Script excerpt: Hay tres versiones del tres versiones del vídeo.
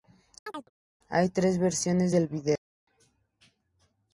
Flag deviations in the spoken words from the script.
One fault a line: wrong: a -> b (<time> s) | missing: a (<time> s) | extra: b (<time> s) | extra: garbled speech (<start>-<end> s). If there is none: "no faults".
missing: tres versiones del (2.3 s)